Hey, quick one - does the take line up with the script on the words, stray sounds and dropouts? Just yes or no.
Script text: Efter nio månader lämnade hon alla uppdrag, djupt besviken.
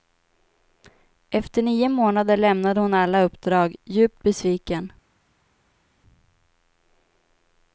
yes